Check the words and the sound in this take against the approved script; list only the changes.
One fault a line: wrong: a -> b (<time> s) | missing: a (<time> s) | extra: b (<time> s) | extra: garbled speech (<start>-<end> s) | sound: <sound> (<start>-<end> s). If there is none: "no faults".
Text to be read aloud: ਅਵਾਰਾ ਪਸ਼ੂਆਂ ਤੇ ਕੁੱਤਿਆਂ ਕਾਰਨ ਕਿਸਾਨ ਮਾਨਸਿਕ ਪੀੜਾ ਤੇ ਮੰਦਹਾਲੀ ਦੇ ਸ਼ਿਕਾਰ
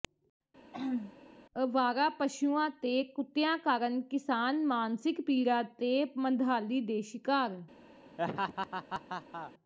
sound: throat clearing (0.7-1.1 s)
sound: laugh (8.2-9.5 s)